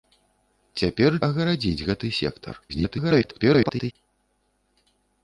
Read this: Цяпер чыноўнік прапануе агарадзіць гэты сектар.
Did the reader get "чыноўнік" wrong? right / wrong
wrong